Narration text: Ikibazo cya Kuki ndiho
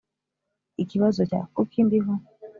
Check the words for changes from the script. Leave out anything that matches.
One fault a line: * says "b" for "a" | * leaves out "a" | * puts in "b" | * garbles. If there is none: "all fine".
all fine